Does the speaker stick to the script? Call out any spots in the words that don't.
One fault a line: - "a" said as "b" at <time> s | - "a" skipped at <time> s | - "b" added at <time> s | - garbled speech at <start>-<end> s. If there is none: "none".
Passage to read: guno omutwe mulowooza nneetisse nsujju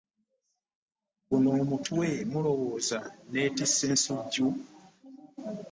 none